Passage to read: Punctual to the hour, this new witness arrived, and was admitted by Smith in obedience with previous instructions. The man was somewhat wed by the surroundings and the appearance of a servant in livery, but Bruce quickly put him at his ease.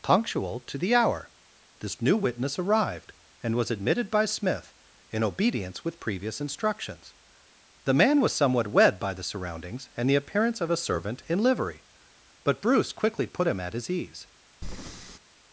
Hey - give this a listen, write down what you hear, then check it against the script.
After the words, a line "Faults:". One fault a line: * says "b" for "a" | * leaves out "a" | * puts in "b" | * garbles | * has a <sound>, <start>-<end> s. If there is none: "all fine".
Punctual to the hour, this new witness arrived, and was admitted by Smith in obedience with previous instructions. The man was somewhat wed by the surroundings and the appearance of a servant in livery, but Bruce quickly put him at his ease.
Faults:
* has a breath, 14.6-15.2 s